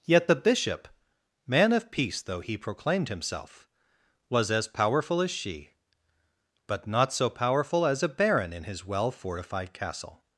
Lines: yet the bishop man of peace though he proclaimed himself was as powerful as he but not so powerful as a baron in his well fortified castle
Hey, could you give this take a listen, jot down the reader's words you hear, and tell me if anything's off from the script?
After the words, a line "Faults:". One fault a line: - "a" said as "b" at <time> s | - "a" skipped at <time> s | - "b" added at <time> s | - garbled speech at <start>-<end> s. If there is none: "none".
yet the bishop man of peace though he proclaimed himself was as powerful as she but not so powerful as a baron in his well fortified castle
Faults:
- "he" said as "she" at 5.3 s